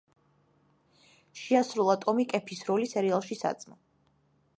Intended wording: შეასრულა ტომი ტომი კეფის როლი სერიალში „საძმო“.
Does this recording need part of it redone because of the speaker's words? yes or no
yes